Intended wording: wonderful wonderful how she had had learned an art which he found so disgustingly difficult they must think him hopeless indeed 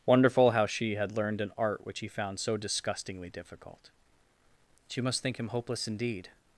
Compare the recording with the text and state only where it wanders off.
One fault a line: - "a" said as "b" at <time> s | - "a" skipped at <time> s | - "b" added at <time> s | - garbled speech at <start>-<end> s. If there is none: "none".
- "wonderful" skipped at 0.5 s
- "had" skipped at 1.1 s
- "they" said as "she" at 4.9 s